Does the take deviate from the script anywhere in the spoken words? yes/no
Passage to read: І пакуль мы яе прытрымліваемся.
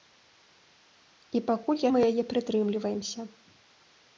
no